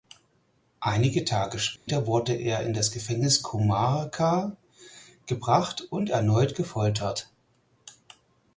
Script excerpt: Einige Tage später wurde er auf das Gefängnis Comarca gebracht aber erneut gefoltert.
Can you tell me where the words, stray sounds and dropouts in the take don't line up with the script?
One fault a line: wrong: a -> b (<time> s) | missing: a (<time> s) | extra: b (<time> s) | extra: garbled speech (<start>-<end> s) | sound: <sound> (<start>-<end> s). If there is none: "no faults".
sound: dropout (1.8-1.9 s)
wrong: auf -> in (2.6 s)
wrong: aber -> und (5.9 s)